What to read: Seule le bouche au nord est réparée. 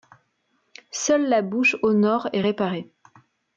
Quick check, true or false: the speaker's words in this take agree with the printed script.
false